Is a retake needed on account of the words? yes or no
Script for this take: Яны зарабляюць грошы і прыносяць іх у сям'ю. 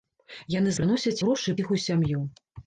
yes